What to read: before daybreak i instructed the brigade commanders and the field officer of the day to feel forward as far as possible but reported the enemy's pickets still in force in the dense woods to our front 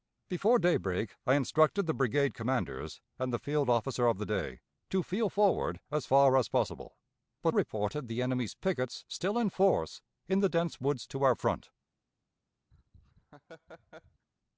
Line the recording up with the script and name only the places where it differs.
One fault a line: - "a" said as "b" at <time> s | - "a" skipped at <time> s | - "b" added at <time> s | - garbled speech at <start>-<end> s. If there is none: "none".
none